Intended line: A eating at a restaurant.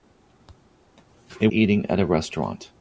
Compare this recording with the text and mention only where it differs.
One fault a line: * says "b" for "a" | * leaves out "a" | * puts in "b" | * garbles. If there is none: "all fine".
all fine